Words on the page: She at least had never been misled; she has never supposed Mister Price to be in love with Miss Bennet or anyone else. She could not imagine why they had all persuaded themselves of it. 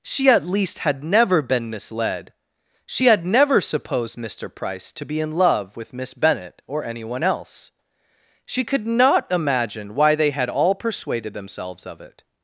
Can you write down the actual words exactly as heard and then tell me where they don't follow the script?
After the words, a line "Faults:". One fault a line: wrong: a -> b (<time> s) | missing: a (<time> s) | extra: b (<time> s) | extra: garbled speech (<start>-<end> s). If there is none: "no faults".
She at least had never been misled; she had never supposed Mister Price to be in love with Miss Bennet or anyone else. She could not imagine why they had all persuaded themselves of it.
Faults:
wrong: has -> had (3.0 s)